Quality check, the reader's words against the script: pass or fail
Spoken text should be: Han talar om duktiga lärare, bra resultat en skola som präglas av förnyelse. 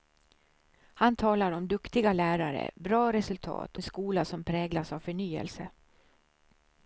pass